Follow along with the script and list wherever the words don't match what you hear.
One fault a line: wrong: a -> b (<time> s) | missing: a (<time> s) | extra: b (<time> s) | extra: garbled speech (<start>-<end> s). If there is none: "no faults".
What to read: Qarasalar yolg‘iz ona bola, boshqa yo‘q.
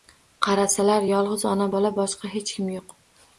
extra: hech kim (2.4 s)